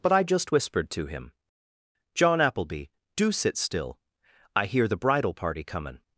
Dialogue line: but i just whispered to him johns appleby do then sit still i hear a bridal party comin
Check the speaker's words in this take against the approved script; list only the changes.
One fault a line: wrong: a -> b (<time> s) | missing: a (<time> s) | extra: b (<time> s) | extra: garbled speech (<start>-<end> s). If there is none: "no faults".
wrong: johns -> john (2.1 s)
missing: then (3.3 s)
wrong: a -> the (4.9 s)